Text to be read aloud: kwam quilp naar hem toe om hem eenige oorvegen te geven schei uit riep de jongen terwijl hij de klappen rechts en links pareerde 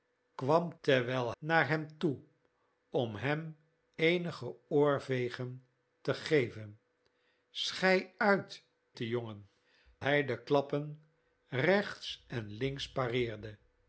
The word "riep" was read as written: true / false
false